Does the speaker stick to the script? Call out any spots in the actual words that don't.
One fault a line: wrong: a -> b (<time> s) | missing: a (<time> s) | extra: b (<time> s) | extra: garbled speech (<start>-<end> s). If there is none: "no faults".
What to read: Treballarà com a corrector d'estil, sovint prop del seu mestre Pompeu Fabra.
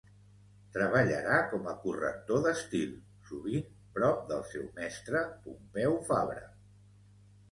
no faults